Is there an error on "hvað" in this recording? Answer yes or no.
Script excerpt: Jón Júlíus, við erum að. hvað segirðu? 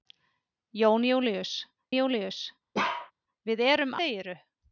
yes